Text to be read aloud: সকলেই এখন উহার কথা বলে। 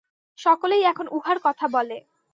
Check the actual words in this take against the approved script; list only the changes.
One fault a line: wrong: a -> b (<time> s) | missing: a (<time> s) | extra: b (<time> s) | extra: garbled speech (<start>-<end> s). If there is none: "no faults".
no faults